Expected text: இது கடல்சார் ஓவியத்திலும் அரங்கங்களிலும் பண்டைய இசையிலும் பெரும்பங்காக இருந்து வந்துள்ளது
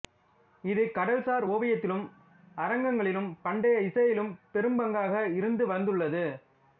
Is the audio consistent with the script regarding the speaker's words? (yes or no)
yes